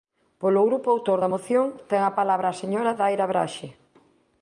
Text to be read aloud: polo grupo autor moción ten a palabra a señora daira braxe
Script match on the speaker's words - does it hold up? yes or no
no